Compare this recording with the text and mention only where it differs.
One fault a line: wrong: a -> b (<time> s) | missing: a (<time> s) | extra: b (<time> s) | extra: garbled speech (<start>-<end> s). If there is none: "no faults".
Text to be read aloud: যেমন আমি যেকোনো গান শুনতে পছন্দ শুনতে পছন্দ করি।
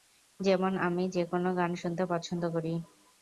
missing: শুনতে পছন্দ (2.4 s)